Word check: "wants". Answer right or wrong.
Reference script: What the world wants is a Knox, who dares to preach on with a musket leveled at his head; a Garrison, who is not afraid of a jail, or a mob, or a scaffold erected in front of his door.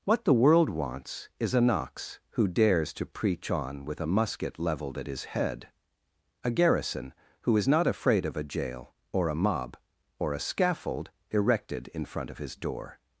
right